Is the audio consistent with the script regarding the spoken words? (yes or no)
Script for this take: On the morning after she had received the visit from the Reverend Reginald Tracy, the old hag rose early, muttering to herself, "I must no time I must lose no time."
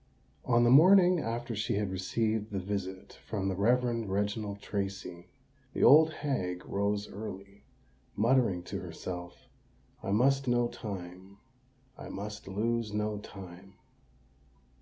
yes